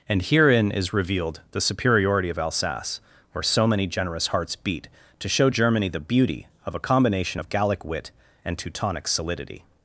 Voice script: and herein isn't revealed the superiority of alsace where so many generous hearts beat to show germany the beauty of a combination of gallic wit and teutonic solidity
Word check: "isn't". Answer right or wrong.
wrong